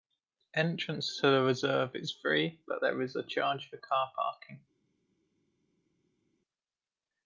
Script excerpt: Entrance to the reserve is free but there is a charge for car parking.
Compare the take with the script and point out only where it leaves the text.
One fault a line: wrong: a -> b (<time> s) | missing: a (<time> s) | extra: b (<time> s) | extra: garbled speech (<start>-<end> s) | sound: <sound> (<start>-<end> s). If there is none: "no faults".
no faults